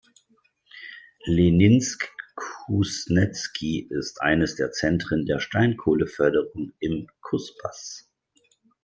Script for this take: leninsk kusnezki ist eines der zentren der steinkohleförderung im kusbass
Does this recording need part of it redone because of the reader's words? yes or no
no